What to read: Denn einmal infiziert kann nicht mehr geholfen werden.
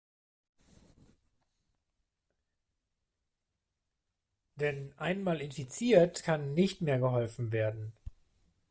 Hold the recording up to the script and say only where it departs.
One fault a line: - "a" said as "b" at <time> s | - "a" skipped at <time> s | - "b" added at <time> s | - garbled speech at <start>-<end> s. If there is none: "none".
none